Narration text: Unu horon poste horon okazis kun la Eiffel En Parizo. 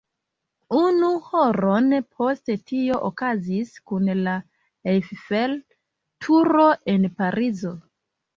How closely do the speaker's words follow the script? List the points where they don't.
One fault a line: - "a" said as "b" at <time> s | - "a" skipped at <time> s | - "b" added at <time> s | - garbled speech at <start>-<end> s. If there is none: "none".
- "horon" said as "tio" at 2.7 s
- "Turo" added at 6.3 s